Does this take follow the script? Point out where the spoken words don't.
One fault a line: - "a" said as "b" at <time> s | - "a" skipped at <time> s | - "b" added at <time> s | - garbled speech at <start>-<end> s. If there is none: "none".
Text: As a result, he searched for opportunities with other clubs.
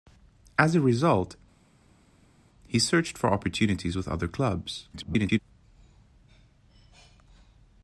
- garbled speech at 4.9-5.4 s